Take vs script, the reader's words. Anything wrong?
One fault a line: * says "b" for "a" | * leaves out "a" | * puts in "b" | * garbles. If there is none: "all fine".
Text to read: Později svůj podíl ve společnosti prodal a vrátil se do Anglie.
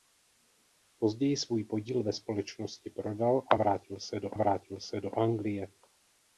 * puts in "vrátil se do"